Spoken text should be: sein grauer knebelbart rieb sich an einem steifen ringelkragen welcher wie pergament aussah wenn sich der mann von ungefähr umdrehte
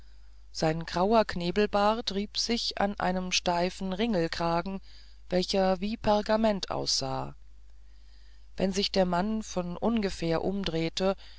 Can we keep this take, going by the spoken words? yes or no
yes